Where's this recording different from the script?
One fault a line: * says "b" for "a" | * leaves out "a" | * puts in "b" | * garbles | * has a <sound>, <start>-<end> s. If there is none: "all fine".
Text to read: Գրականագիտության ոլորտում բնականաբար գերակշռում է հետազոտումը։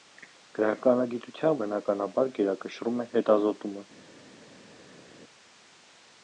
* leaves out "ոլորտում"